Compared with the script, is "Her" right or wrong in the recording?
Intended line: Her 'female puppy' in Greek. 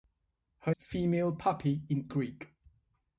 right